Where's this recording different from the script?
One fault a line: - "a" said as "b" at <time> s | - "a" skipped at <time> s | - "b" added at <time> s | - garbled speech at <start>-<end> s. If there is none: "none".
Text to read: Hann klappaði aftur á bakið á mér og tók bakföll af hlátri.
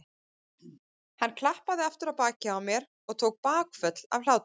none